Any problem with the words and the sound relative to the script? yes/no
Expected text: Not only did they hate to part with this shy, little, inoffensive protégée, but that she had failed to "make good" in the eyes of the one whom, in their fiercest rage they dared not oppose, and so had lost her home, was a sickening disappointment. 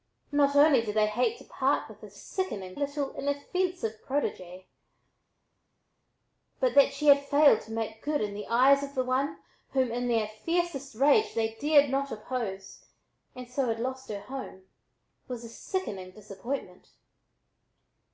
yes